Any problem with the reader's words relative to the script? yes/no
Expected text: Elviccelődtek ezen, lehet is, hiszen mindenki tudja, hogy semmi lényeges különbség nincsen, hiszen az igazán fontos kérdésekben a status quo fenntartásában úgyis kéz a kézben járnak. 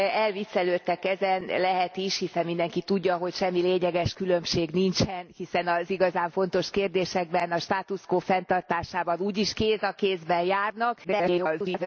yes